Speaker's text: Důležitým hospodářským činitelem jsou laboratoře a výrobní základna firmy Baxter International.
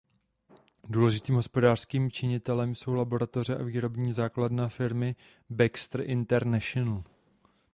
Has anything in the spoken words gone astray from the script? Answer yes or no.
no